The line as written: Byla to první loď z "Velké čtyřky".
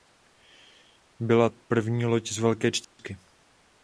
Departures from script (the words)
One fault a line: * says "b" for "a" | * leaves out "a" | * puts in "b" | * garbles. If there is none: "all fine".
* leaves out "to"